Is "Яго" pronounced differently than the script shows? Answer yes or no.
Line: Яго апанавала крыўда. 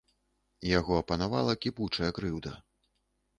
no